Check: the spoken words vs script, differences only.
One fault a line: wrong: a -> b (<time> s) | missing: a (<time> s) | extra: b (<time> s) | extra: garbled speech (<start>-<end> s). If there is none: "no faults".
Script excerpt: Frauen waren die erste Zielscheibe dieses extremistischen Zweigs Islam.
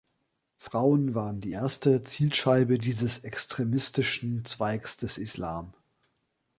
extra: des (5.0 s)